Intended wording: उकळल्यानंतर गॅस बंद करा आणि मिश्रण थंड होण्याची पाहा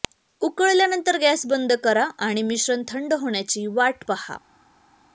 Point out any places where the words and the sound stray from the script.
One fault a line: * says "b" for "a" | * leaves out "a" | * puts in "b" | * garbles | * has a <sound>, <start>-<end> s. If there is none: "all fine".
* puts in "वाट"